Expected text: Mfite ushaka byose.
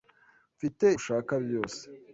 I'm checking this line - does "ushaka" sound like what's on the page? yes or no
yes